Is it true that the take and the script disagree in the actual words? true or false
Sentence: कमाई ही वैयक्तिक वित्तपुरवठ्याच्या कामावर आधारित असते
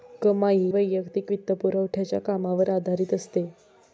true